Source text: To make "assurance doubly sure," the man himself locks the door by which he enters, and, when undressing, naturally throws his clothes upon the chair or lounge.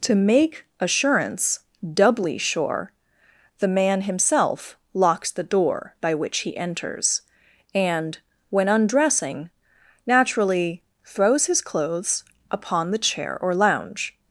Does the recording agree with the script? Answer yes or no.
yes